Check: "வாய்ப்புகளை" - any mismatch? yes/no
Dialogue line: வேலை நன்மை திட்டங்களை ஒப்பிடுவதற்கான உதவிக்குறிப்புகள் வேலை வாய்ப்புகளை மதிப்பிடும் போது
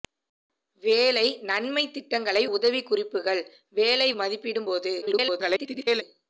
yes